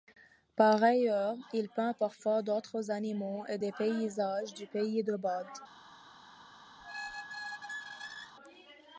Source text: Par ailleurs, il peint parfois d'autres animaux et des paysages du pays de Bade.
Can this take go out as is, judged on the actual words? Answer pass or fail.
pass